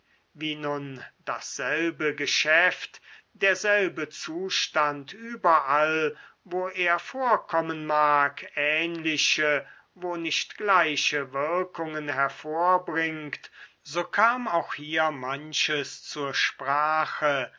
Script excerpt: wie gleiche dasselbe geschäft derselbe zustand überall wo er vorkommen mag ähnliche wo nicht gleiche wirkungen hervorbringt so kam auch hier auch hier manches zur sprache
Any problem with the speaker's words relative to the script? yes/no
yes